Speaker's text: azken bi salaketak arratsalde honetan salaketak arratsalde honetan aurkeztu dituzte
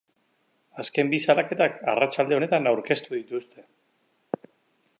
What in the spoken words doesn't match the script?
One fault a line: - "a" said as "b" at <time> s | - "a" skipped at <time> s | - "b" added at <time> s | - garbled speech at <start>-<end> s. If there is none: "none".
- "salaketak arratsalde honetan" skipped at 2.7 s